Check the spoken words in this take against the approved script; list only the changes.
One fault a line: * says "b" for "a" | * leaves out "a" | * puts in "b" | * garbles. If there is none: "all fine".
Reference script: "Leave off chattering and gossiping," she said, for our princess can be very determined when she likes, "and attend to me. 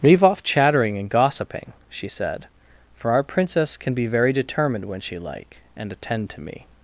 * says "like" for "likes"